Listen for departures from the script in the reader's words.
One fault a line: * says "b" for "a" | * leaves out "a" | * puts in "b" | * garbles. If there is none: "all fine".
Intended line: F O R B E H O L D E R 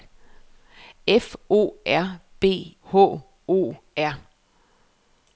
* leaves out "E"
* leaves out "L D E"